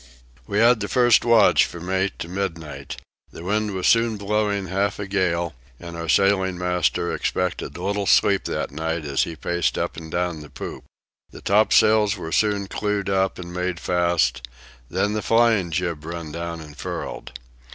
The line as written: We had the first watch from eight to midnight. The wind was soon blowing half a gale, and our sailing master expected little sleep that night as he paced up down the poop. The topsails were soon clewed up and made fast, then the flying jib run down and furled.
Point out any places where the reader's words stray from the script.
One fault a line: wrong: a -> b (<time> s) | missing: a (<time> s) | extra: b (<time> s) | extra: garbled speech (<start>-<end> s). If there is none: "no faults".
extra: and (10.0 s)